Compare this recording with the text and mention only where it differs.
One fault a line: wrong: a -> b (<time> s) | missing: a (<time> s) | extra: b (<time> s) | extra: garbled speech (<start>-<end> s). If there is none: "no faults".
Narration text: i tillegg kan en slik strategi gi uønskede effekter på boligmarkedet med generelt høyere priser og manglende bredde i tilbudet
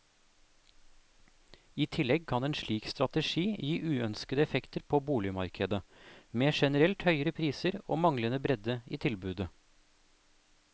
no faults